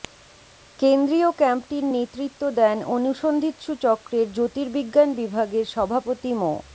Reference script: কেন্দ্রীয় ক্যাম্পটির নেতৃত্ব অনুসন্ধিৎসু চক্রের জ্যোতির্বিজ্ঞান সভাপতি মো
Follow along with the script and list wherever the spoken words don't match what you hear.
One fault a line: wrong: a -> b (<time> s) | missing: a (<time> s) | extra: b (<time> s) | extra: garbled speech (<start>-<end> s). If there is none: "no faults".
extra: দেন (2.6 s)
extra: বিভাগের (5.2 s)